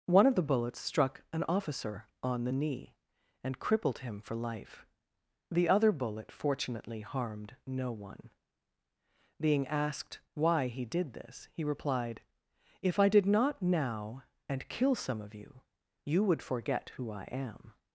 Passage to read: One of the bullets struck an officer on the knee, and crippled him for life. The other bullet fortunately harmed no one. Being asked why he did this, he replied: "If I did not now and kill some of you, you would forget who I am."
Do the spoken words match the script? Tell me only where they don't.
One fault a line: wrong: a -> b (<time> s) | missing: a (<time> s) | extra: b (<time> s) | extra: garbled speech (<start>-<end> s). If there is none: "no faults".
no faults